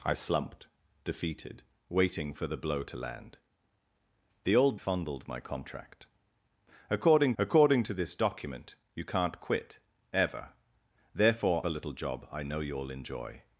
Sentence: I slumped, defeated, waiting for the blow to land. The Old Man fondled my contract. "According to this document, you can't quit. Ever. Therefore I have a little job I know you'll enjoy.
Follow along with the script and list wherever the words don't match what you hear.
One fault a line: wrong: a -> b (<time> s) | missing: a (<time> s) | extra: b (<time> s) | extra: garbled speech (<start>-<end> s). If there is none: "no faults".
missing: Man (4.8 s)
extra: according (7.4 s)
missing: I have (11.6 s)